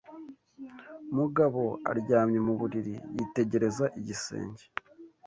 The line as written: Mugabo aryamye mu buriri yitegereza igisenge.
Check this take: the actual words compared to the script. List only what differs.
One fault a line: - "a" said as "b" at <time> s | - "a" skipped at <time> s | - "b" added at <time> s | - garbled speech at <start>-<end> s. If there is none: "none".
none